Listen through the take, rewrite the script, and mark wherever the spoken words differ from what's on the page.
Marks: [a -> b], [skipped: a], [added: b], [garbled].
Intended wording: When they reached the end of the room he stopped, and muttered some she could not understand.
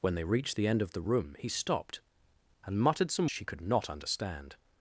When they reached the end of the room he stopped, and muttered some she could not understand.